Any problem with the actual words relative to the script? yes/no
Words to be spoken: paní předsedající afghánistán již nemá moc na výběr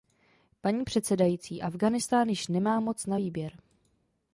no